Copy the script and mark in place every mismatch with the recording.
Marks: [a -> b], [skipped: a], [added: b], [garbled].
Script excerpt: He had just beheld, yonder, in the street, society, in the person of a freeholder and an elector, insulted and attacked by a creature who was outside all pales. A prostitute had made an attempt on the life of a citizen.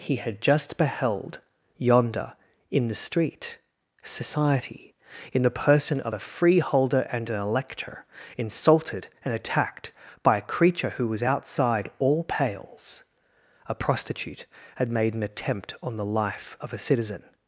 He had just beheld, yonder, in the street, society, in the person of a freeholder and an elector, insulted and attacked by a creature who was outside all pales. A prostitute had made an attempt on the life of a citizen.